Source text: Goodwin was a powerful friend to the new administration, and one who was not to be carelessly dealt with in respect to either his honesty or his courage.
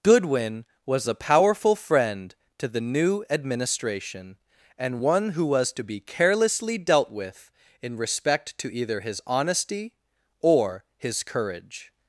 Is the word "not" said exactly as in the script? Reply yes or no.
no